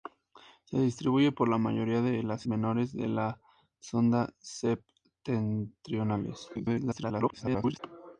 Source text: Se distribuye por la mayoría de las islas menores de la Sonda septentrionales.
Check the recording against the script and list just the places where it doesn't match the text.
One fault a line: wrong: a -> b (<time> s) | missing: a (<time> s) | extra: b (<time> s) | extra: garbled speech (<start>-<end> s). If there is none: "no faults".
missing: islas (2.5 s)
extra: garbled speech (6.5-7.8 s)